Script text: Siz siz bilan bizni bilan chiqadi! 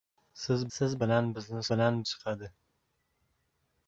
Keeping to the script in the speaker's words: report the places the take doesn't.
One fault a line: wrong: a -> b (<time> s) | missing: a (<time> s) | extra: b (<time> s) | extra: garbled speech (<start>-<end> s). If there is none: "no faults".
no faults